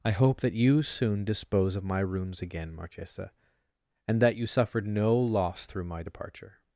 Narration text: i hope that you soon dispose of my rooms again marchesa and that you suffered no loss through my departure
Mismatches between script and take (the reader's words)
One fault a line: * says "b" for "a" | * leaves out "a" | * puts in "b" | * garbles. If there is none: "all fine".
all fine